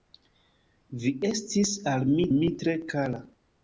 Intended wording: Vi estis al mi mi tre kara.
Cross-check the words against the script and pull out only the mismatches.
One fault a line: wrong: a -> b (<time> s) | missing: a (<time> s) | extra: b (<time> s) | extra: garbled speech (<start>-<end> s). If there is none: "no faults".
no faults